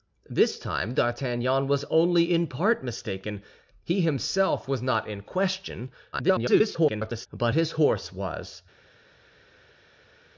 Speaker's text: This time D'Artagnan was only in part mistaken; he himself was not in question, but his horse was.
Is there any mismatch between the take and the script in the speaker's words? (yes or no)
yes